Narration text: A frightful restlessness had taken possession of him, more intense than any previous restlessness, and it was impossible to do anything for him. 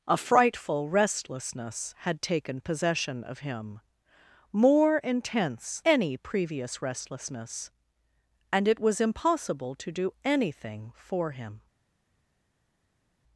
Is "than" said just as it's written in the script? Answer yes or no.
no